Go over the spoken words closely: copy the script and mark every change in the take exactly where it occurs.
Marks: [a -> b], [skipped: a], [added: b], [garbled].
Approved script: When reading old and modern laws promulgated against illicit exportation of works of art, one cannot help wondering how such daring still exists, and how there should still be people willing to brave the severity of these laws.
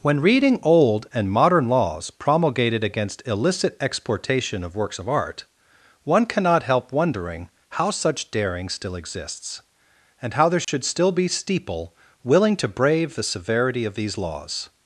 When reading old and modern laws promulgated against illicit exportation of works of art, one cannot help wondering how such daring still exists, and how there should still be [people -> steeple] willing to brave the severity of these laws.